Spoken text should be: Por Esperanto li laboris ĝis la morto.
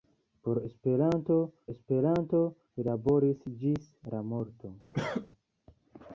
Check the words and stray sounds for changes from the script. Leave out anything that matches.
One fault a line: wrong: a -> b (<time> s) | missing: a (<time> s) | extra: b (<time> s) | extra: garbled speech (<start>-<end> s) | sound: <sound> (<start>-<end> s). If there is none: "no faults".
extra: Esperanto (1.7 s)
sound: cough (4.9-5.3 s)